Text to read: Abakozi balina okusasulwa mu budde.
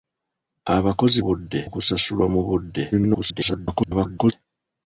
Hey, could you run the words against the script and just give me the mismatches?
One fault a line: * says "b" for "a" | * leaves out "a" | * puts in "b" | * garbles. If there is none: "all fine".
* says "budde" for "balina"
* garbles